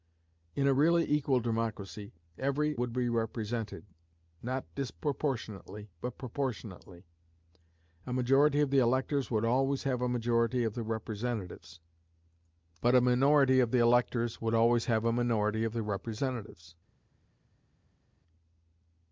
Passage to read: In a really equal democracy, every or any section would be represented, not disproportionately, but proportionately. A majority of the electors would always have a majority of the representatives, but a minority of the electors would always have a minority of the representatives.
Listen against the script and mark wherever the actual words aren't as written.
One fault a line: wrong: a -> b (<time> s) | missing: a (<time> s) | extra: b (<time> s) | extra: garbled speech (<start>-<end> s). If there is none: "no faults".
missing: or any section (2.8 s)